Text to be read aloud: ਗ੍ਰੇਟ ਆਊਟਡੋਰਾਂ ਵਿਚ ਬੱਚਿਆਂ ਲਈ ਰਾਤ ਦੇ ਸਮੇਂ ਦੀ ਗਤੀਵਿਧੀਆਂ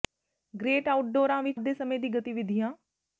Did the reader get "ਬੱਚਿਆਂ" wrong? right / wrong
wrong